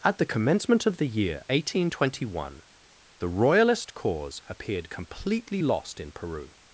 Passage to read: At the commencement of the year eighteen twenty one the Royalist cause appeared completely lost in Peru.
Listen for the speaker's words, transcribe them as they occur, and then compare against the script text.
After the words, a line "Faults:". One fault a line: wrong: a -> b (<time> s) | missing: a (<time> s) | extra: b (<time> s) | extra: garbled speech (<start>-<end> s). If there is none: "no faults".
At the commencement of the year eighteen twenty one the Royalist cause appeared completely lost in Peru.
Faults:
no faults